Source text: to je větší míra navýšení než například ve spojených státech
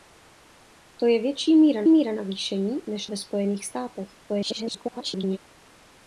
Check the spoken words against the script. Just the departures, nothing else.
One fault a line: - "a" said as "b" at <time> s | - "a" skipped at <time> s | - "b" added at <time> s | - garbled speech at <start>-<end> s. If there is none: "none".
- "míra" added at 1.9 s
- "například" skipped at 3.1 s
- garbled speech at 4.3-5.4 s